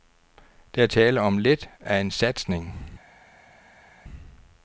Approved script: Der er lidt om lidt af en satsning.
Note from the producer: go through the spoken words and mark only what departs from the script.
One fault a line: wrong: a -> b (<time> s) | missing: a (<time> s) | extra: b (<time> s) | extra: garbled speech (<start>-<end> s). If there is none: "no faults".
wrong: lidt -> tale (0.9 s)